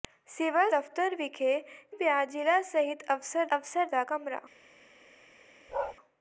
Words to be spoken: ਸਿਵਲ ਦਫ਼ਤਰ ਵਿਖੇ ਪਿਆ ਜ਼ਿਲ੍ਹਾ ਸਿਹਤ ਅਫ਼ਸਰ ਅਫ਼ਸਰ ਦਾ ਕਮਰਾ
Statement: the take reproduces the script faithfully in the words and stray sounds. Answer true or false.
false